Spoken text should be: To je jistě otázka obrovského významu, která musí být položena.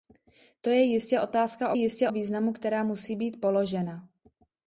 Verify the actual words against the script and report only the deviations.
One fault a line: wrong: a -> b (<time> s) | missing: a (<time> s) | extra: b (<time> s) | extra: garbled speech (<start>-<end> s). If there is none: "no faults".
wrong: obrovského -> jistě (1.7 s)